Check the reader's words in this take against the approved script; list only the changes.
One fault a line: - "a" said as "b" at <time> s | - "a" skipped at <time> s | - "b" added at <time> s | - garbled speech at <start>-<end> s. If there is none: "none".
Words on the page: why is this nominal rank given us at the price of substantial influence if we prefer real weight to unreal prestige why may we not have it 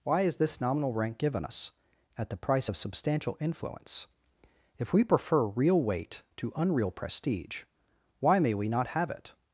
none